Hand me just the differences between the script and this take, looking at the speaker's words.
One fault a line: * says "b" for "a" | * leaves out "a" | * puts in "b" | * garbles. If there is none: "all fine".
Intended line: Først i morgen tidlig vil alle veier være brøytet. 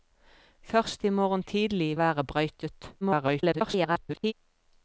* leaves out "vil alle veier"
* garbles